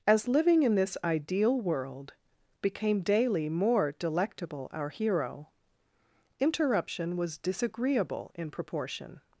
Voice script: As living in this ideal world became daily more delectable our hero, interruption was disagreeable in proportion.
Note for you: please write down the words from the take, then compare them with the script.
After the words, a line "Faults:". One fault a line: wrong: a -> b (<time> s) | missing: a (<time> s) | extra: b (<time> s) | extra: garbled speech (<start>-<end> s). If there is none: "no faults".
As living in this ideal world became daily more delectable our hero, interruption was disagreeable in proportion.
Faults:
no faults